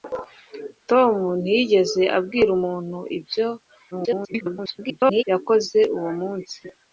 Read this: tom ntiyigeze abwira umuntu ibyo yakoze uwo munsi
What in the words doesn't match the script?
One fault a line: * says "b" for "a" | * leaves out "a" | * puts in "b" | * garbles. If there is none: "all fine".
* garbles